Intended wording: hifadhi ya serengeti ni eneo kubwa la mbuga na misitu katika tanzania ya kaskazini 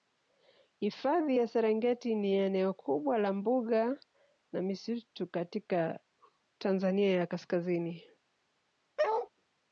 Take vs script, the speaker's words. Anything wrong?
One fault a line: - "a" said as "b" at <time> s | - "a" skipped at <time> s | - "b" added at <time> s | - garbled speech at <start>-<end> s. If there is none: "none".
none